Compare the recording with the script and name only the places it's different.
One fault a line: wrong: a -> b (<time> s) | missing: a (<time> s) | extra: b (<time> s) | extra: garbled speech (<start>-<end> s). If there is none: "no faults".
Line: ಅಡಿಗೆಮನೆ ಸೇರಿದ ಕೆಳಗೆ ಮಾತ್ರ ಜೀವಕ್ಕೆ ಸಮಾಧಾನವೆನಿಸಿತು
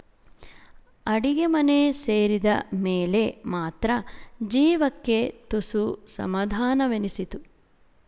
wrong: ಕೆಳಗೆ -> ಮೇಲೆ (2.8 s)
extra: ತುಸು (5.5 s)